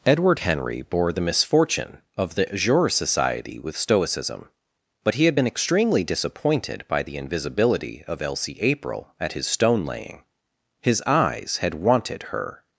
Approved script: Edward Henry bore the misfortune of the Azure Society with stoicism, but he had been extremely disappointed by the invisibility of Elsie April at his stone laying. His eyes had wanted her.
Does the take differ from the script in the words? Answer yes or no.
no